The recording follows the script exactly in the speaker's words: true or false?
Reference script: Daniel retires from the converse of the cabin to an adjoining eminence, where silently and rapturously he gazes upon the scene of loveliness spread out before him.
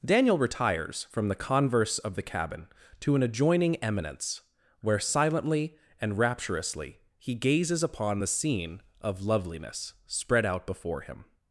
true